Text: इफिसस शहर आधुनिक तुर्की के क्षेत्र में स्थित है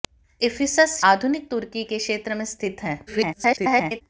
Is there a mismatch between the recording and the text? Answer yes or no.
yes